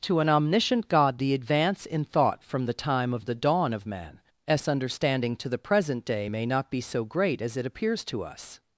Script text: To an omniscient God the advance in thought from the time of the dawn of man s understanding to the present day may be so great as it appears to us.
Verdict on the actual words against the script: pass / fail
fail